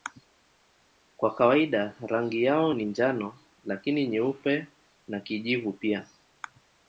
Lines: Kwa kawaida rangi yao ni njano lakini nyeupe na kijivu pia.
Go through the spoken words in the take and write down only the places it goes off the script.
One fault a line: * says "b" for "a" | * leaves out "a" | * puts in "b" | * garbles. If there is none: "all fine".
all fine